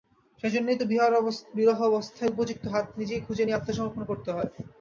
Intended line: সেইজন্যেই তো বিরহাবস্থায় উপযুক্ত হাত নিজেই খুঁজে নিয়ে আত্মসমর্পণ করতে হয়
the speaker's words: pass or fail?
pass